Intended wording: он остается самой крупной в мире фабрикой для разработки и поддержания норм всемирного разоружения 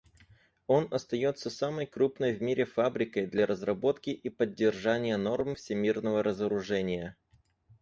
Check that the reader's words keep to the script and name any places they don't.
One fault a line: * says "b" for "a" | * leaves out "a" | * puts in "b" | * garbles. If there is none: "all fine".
all fine